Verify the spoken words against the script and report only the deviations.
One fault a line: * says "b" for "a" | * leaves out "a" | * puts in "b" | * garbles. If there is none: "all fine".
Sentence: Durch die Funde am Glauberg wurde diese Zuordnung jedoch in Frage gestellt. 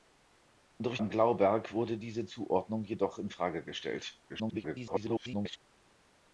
* leaves out "die Funde"
* garbles